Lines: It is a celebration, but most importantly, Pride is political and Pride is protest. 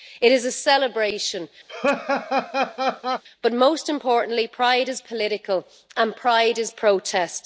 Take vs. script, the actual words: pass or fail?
pass